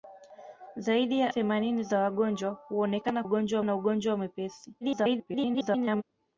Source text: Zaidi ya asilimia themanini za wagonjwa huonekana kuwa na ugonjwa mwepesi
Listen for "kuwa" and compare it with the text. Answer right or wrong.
wrong